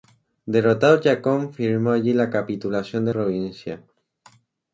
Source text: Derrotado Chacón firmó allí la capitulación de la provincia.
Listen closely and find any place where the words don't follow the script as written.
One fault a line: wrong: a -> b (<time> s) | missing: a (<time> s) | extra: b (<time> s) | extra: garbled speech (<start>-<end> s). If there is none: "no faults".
missing: la (3.1 s)